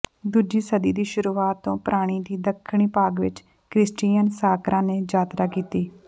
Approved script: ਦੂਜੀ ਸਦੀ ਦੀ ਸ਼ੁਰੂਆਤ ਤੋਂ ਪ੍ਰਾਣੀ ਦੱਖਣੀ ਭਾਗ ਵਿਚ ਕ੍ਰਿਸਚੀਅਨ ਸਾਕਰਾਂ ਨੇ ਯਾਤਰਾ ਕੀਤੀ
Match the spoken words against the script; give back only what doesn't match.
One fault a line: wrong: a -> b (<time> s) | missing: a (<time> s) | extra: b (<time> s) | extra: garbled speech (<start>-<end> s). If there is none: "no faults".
extra: ਦੀ (2.2 s)